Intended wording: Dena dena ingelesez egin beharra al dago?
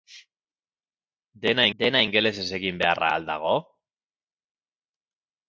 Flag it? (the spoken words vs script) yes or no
no